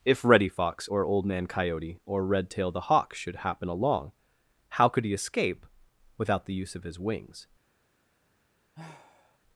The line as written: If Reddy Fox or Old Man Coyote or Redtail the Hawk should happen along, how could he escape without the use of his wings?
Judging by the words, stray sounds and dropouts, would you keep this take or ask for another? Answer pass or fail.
fail